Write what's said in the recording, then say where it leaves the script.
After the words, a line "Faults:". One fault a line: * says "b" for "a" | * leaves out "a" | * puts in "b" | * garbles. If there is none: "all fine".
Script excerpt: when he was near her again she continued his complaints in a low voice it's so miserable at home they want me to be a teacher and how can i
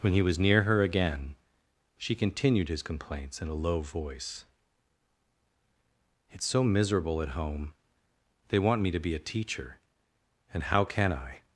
when he was near her again she continued his complaints in a low voice it's so miserable at home they want me to be a teacher and how can i
Faults:
all fine